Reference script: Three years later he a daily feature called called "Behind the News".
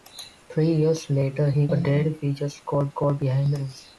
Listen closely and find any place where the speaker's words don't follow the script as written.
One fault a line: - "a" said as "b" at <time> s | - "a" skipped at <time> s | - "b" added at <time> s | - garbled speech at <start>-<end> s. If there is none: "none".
none